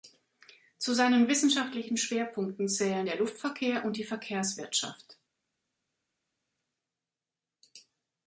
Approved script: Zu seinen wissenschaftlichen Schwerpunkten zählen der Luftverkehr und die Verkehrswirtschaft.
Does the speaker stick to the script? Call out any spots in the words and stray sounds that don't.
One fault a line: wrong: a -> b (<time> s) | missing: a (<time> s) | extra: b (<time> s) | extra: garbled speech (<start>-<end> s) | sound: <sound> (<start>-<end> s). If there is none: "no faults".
no faults